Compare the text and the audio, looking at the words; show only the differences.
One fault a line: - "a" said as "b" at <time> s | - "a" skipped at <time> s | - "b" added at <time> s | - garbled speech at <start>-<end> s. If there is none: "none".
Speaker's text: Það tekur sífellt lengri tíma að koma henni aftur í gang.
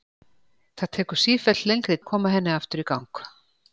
- "tíma" skipped at 2.0 s